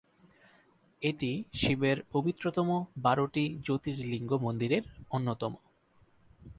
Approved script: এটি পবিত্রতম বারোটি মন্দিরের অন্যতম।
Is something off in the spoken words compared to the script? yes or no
yes